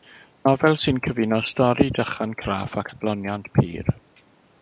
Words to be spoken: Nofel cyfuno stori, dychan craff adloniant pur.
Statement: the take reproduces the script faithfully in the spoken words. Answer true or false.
false